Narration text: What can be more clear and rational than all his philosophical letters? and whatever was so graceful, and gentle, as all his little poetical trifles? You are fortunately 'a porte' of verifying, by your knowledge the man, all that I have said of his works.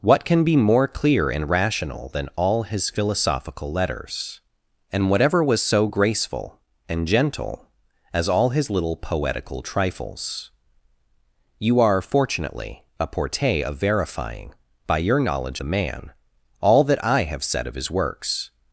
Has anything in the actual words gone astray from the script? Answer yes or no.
no